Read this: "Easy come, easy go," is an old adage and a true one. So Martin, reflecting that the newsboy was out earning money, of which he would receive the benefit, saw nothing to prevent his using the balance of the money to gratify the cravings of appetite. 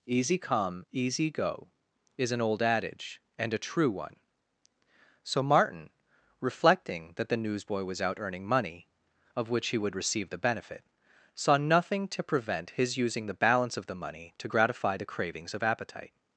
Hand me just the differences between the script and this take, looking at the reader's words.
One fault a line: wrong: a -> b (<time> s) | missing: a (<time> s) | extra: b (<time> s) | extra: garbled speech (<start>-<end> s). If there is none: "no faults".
no faults